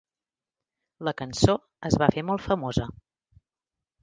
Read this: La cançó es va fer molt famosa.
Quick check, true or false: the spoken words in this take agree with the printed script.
true